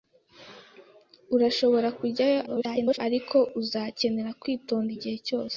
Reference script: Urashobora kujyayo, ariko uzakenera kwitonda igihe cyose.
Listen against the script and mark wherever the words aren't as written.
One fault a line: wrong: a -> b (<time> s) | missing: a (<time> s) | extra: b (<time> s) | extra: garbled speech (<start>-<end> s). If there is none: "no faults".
extra: garbled speech (2.5-3.0 s)